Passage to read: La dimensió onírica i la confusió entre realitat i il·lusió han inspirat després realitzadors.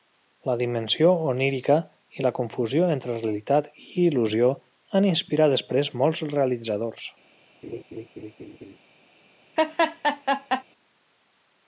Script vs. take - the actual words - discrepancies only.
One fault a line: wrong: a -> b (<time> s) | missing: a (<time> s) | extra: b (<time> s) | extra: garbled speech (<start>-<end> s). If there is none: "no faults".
extra: molts (6.0 s)